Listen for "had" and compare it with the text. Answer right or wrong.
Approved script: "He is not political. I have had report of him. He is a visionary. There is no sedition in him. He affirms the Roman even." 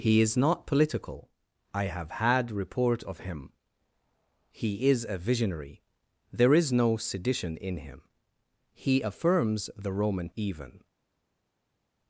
right